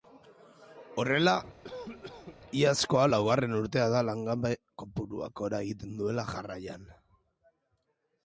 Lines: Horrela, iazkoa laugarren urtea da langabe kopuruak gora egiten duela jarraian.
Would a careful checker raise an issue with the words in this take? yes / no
no